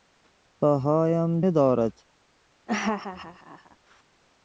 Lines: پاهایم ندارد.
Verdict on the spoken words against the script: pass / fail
pass